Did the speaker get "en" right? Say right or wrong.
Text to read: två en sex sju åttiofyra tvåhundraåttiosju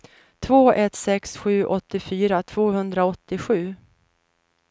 wrong